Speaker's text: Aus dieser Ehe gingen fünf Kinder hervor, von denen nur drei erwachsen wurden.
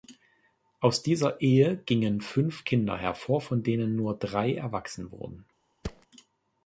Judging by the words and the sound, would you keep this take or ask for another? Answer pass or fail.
fail